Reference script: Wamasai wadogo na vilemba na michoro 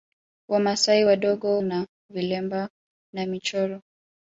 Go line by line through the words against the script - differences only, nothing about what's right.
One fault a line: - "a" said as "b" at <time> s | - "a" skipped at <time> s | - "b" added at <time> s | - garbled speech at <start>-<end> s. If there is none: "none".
none